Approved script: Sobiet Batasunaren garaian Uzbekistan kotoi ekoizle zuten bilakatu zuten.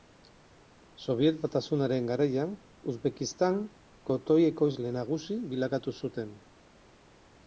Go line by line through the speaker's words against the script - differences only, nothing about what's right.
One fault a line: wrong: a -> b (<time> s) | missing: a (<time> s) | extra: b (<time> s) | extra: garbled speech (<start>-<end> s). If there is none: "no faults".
wrong: zuten -> nagusi (5.0 s)